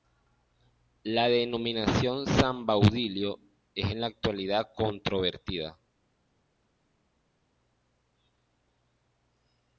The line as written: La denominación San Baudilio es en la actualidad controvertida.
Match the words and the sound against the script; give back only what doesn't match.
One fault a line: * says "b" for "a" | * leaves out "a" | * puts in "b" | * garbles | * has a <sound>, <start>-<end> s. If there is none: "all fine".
all fine